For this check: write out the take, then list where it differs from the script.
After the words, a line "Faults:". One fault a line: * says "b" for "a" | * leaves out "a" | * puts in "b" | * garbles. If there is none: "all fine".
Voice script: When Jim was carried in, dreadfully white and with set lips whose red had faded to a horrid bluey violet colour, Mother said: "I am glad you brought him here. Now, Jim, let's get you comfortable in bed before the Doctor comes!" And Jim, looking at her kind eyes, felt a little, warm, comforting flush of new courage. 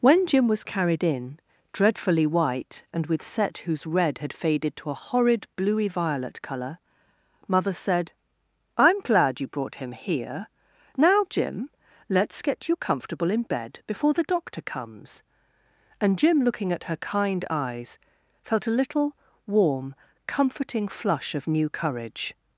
When Jim was carried in, dreadfully white and with set whose red had faded to a horrid bluey violet colour, Mother said: "I am glad you brought him here. Now, Jim, let's get you comfortable in bed before the Doctor comes!" And Jim, looking at her kind eyes, felt a little, warm, comforting flush of new courage.
Faults:
* leaves out "lips"